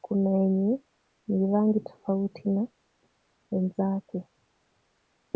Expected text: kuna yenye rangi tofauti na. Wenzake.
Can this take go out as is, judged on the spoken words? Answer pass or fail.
fail